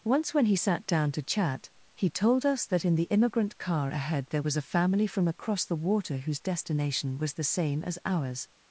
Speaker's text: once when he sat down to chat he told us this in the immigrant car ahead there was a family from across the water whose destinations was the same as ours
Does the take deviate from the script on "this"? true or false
true